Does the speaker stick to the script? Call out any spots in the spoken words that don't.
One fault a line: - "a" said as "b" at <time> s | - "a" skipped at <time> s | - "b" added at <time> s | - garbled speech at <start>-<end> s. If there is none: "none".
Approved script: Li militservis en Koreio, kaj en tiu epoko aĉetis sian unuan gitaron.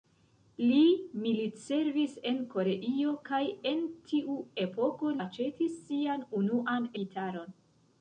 none